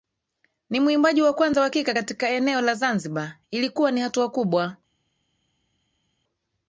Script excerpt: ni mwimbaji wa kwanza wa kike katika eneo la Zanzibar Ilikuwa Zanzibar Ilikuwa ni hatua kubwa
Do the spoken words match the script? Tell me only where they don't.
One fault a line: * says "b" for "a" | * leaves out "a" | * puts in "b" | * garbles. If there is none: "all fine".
* leaves out "Zanzibar Ilikuwa"